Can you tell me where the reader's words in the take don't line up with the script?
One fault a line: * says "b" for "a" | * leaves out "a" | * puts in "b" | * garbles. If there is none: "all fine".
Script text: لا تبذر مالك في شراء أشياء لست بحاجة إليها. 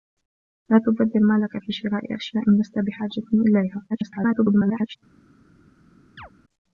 * garbles